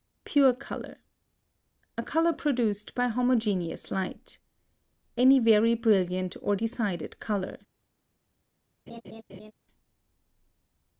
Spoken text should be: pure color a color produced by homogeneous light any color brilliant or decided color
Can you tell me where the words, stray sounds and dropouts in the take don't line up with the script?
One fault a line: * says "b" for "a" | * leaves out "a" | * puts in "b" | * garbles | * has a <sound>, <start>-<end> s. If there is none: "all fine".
* says "very" for "color"
* has a laugh, 8.9-9.5 s